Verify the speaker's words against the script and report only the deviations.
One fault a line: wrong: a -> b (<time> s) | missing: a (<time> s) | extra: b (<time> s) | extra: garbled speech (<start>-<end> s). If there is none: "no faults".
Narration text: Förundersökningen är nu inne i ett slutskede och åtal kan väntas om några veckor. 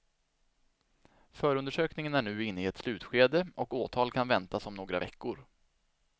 no faults